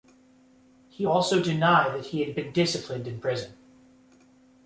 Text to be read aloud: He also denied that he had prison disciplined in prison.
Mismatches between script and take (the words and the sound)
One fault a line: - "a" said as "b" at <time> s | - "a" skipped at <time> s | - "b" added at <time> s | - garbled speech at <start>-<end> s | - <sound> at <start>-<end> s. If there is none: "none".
- "prison" said as "been" at 2.3 s